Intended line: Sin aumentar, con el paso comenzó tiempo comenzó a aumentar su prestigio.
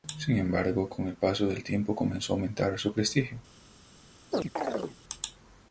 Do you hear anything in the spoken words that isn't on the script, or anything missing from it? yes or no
yes